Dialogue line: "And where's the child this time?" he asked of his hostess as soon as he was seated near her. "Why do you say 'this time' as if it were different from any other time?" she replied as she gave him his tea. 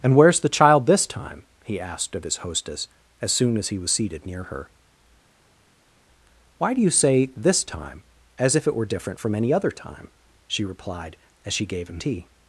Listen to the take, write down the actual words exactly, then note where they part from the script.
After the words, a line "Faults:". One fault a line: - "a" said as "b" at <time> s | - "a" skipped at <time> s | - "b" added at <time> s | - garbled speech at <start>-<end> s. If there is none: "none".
"And where's the child this time?" he asked of his hostess as soon as he was seated near her. "Why do you say 'this time' as if it were different from any other time?" she replied as she gave him tea.
Faults:
- "his" skipped at 12.0 s